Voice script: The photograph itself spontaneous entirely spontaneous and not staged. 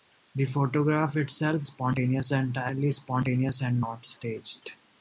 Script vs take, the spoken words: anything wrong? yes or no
no